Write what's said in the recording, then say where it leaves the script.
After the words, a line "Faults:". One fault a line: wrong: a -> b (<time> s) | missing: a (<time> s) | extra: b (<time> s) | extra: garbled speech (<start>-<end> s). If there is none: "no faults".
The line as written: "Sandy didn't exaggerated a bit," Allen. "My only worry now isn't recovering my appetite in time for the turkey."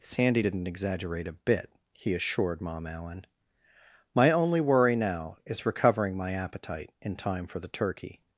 "Sandy didn't exaggerate a bit," he assured Mom Allen. "My only worry now is recovering my appetite in time for the turkey."
Faults:
wrong: exaggerated -> exaggerate (0.7 s)
extra: he assured Mom (1.9 s)
wrong: isn't -> is (5.4 s)